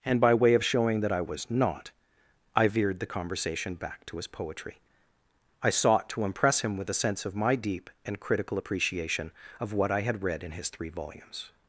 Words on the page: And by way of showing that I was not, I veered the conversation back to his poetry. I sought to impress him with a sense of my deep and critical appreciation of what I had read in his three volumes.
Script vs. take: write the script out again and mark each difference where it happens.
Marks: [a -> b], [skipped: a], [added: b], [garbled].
And by way of showing that I was not, I veered the conversation back to his poetry. I sought to impress him with a sense of my deep and critical appreciation of what I had read in his three volumes.